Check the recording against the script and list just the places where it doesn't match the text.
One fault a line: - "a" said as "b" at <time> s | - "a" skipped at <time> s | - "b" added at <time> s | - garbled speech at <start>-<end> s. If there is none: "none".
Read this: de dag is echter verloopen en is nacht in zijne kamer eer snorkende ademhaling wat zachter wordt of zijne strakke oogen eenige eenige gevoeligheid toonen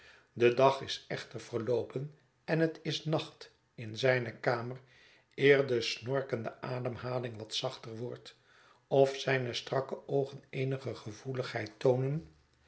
- "het" added at 2.6 s
- "de" added at 5.7 s
- "eenige" skipped at 10.9 s